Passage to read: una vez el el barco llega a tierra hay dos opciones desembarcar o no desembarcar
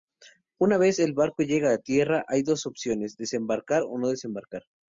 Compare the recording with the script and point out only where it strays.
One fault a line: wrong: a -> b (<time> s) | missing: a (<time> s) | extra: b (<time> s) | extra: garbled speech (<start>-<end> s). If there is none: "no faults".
missing: el (1.1 s)